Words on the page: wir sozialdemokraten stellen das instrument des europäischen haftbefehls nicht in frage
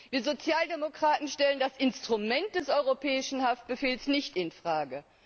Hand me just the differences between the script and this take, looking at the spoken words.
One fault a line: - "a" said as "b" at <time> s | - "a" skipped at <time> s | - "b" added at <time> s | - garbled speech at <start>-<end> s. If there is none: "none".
none